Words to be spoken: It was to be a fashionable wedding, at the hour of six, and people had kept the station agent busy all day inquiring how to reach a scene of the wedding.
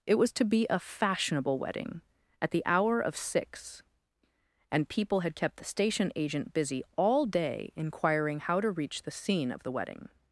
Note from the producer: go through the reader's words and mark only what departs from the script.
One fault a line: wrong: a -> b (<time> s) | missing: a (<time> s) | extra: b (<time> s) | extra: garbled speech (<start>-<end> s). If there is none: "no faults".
wrong: a -> the (9.0 s)